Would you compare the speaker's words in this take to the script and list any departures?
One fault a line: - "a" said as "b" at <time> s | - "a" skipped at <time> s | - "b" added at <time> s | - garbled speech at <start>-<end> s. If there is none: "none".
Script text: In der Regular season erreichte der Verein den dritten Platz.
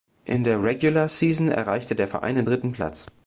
none